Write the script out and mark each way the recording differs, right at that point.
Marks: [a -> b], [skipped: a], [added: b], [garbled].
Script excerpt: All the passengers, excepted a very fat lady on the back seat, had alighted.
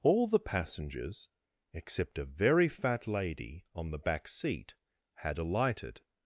All the passengers, [excepted -> except] a very fat lady on the back seat, had alighted.